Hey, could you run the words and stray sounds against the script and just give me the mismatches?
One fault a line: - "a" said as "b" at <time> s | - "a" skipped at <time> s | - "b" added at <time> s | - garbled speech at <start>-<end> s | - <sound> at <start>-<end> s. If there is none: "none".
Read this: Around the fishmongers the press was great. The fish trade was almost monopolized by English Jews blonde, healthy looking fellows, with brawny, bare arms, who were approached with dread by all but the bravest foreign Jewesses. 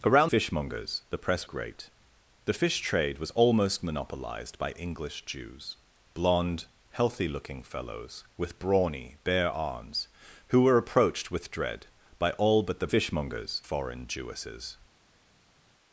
- "the" skipped at 0.3 s
- "was" skipped at 1.5 s
- "bravest" said as "fishmongers" at 12.9 s